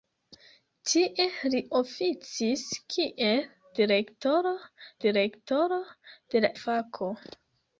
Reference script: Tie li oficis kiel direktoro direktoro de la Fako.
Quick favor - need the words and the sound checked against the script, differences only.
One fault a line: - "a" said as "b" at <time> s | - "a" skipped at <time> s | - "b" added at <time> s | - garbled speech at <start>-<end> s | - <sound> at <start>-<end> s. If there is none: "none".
none